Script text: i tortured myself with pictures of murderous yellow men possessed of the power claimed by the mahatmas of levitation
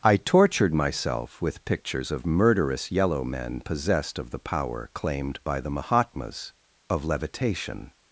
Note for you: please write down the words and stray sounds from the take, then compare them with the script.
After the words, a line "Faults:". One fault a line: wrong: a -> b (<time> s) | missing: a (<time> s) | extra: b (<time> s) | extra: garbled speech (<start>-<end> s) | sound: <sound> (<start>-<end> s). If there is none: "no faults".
i tortured myself with pictures of murderous yellow men possessed of the power claimed by the mahatmas of levitation
Faults:
no faults